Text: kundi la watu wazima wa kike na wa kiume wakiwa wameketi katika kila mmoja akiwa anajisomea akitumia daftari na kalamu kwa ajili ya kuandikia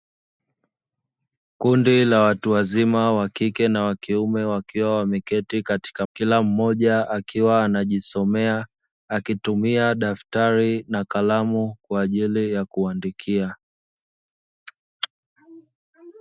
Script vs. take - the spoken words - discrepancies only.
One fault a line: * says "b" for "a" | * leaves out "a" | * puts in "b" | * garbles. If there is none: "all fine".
all fine